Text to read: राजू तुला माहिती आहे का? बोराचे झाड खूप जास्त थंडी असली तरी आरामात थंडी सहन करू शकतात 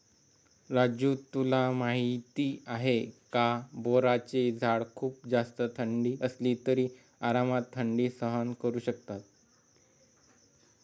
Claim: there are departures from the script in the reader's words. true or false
false